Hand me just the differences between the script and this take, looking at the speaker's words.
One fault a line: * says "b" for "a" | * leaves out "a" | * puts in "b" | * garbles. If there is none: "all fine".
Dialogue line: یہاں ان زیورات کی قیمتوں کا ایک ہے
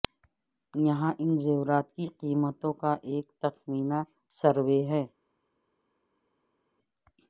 * puts in "تخمینہ سروے"